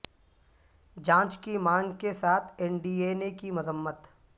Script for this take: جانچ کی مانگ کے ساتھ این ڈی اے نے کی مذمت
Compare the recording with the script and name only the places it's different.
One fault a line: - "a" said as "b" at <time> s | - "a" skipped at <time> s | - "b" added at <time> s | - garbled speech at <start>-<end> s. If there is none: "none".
none